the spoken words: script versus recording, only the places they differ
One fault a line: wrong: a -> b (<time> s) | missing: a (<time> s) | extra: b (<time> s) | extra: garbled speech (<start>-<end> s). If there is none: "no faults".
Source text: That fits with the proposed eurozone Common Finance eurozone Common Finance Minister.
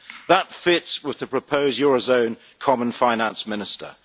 missing: eurozone Common Finance (3.5 s)